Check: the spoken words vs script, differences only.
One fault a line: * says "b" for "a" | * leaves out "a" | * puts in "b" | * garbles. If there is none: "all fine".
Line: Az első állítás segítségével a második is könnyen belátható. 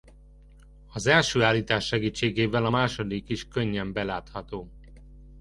all fine